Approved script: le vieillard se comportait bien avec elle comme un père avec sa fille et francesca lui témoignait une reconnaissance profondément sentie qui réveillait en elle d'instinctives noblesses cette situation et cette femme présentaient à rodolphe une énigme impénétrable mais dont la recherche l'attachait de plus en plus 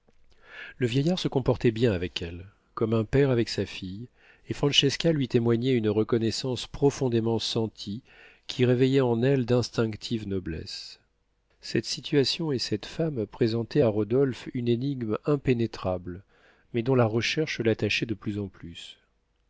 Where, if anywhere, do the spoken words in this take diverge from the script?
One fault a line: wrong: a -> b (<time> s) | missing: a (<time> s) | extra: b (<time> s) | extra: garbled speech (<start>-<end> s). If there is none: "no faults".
no faults